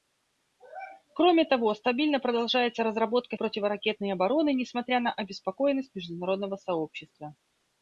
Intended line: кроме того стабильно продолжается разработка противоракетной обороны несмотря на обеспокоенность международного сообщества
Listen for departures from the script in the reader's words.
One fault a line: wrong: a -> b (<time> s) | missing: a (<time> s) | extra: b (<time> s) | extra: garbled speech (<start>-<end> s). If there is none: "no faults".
no faults